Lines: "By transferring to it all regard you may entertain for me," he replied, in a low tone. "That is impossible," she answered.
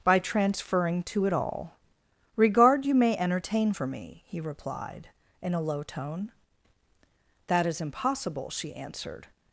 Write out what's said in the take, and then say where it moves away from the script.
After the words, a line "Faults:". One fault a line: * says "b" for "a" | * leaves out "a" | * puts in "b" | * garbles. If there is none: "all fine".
"By transferring to it all regard you may entertain for me," he replied, in a low tone. "That is impossible," she answered.
Faults:
all fine